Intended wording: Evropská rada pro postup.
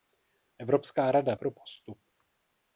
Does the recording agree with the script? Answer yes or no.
yes